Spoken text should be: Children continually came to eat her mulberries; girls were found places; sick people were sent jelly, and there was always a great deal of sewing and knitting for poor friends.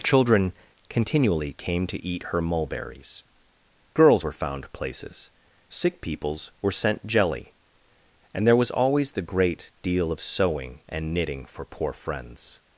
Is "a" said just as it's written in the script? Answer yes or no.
no